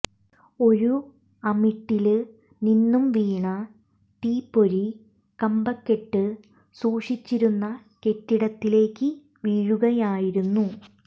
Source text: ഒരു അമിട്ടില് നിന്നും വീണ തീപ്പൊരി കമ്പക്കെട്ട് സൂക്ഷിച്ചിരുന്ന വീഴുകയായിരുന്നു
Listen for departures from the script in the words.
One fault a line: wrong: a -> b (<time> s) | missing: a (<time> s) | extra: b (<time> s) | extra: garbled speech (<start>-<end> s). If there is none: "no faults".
extra: കെട്ടിടത്തിലേക്ക് (8.1 s)